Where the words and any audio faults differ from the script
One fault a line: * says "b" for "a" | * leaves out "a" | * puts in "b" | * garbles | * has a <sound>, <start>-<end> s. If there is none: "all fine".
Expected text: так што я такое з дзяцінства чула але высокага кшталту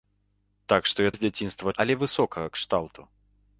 * leaves out "такое"
* leaves out "чула"